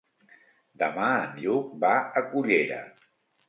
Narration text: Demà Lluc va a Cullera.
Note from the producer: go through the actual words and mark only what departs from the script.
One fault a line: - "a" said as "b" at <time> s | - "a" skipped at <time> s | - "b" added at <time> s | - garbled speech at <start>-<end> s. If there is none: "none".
- "en" added at 1.3 s